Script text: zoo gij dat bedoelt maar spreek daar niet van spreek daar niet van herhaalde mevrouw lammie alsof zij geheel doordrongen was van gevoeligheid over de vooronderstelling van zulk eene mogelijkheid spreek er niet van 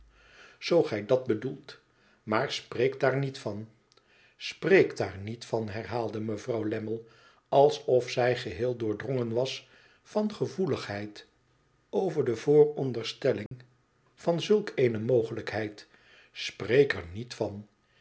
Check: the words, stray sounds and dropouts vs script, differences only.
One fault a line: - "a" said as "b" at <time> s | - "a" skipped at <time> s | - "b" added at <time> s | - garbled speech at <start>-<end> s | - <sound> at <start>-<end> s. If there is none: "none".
- dropout at 13.5-13.5 s